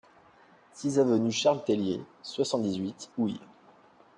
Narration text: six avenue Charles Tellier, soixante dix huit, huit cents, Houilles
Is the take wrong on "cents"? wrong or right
wrong